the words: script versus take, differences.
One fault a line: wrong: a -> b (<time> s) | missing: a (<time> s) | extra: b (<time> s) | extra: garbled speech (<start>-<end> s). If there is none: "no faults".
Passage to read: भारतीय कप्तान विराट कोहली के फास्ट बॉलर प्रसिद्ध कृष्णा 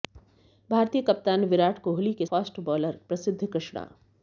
no faults